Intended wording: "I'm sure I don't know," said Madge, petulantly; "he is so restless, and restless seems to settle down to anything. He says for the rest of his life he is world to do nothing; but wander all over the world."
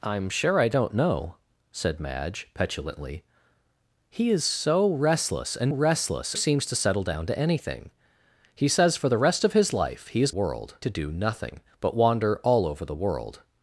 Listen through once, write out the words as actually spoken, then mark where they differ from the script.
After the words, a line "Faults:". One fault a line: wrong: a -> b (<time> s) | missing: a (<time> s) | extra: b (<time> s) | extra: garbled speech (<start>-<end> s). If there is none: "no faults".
"I'm sure I don't know," said Madge, petulantly; "he is so restless, and restless seems to settle down to anything. He says for the rest of his life he is world to do nothing; but wander all over the world."
Faults:
no faults